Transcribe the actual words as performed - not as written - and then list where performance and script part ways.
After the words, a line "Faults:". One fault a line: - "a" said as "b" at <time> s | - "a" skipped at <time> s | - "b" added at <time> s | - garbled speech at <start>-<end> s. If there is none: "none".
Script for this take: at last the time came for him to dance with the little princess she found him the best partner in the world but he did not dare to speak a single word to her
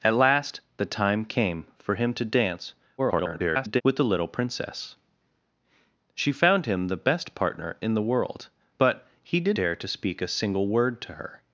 at last the time came for him to dance [garbled] with the little princess she found him the best partner in the world but he did dare to speak a single word to her
Faults:
- garbled speech at 3.0-3.8 s
- "not" skipped at 9.6 s